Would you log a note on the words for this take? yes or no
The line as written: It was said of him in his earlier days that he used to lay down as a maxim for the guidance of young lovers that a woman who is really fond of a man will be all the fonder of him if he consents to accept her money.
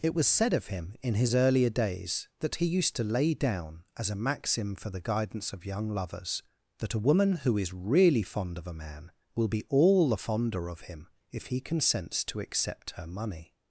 no